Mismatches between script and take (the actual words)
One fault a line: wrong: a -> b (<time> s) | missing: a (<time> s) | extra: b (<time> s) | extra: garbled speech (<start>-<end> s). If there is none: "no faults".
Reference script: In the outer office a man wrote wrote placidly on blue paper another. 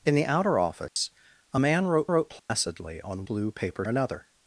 no faults